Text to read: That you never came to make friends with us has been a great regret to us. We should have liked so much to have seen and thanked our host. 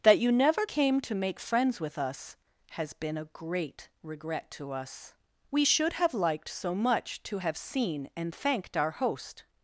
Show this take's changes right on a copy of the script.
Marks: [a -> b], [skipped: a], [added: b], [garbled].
That you never came to make friends with us has been a great regret to us. We should have liked so much to have seen and thanked our host.